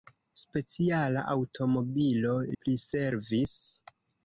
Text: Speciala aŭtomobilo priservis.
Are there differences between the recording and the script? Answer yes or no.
no